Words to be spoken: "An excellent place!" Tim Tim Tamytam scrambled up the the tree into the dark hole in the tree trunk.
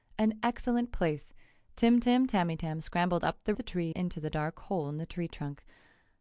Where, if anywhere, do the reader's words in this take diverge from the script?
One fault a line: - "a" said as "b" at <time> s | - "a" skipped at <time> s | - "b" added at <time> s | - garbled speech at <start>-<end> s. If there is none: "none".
none